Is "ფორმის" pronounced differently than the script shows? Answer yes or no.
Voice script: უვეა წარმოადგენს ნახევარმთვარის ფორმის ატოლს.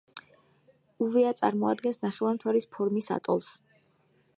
no